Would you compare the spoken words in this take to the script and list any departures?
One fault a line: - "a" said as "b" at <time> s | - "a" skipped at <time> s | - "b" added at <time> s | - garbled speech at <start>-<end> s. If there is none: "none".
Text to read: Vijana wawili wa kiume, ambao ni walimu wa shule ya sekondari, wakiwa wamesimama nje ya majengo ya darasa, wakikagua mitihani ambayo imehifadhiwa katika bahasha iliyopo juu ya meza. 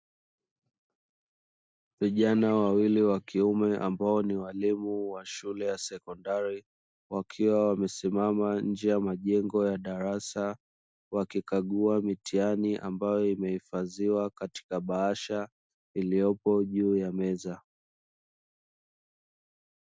none